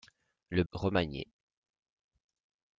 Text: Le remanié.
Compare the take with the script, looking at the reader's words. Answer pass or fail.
pass